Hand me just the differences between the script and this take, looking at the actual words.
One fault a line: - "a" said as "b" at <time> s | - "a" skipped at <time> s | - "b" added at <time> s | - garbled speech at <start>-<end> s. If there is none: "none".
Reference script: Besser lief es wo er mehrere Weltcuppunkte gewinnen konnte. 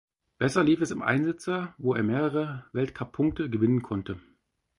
- "im Einsitzer" added at 0.9 s